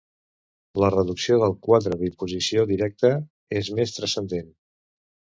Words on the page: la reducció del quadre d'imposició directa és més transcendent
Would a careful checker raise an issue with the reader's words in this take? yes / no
no